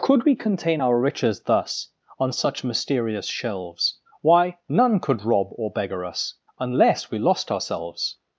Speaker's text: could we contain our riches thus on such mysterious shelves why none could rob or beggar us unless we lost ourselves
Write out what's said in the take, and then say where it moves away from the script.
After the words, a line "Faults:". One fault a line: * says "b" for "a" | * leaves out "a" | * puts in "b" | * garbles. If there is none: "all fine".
could we contain our riches thus on such mysterious shelves why none could rob or beggar us unless we lost ourselves
Faults:
all fine